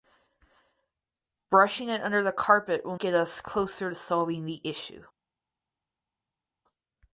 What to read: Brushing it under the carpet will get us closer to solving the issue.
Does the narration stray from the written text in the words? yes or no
no